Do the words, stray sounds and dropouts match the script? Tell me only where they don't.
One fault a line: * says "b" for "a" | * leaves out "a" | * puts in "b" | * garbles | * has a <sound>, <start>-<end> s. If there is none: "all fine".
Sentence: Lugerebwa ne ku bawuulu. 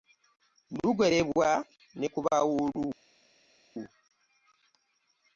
all fine